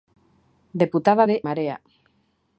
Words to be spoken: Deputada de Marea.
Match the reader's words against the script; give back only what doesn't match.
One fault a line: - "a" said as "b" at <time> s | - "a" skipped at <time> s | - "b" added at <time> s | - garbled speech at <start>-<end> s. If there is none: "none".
none